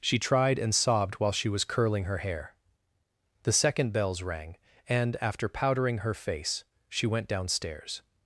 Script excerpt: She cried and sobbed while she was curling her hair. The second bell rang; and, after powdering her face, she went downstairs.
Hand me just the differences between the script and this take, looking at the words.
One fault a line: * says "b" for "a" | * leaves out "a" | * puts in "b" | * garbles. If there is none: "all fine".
* says "tried" for "cried"
* says "bells" for "bell"